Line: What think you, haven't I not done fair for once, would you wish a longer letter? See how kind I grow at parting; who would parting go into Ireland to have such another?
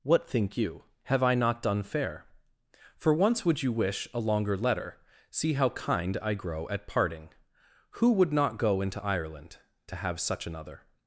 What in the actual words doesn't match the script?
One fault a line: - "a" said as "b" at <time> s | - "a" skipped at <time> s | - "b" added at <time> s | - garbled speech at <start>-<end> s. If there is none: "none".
- "haven't" said as "have" at 1.0 s
- "parting" said as "not" at 8.3 s